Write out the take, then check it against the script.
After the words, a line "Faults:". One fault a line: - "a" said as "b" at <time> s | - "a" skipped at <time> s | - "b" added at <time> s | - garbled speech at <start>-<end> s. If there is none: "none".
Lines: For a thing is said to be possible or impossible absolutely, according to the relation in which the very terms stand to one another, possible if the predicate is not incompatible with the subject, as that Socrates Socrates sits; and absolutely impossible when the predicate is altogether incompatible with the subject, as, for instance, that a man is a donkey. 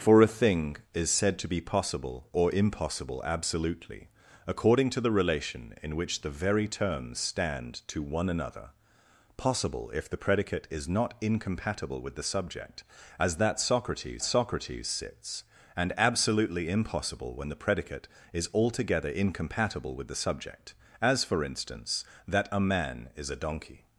For a thing is said to be possible or impossible absolutely, according to the relation in which the very terms stand to one another, possible if the predicate is not incompatible with the subject, as that Socrates Socrates sits; and absolutely impossible when the predicate is altogether incompatible with the subject, as, for instance, that a man is a donkey.
Faults:
none